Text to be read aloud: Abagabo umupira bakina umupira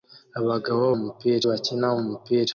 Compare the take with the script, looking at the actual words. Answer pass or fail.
pass